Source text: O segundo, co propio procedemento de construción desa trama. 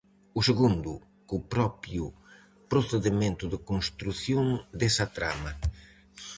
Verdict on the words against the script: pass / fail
pass